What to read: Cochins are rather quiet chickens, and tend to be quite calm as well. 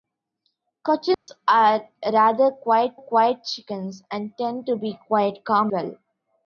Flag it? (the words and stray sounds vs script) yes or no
yes